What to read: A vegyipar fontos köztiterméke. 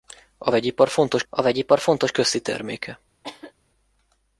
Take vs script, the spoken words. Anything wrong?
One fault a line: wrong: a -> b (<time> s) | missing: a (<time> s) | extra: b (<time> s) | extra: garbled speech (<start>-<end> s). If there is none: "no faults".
extra: a vegyipar fontos (1.3 s)